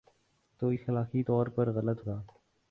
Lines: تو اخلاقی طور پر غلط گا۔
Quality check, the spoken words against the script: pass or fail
pass